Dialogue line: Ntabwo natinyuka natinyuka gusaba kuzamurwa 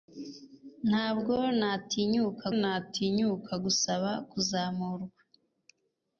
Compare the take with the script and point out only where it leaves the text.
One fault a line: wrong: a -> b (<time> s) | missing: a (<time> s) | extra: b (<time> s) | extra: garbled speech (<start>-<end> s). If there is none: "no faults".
no faults